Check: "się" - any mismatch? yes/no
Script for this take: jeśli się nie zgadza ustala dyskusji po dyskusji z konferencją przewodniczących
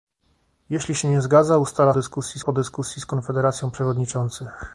no